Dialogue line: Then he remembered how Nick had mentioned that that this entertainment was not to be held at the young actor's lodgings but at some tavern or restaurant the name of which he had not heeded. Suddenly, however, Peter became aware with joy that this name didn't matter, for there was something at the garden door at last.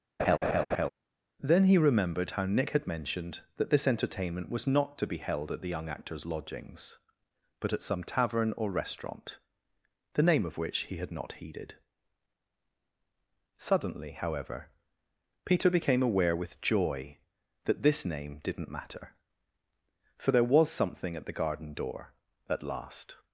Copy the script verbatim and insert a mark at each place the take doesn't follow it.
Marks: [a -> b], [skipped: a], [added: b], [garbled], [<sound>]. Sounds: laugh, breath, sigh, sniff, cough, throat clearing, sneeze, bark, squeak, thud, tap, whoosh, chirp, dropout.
[laugh] Then he remembered how Nick had mentioned that [skipped: that] this entertainment was not to be held at the young actor's lodgings but at some tavern or restaurant the name of which he had not heeded. Suddenly, however, Peter became aware with joy that this name didn't matter, for there was something at the garden door at last.